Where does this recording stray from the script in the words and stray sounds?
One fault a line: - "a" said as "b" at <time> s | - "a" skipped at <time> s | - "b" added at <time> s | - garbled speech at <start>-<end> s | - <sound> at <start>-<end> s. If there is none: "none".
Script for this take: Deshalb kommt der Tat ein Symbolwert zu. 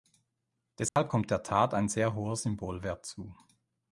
- dropout at 0.9-1.0 s
- "sehr hoher" added at 1.9 s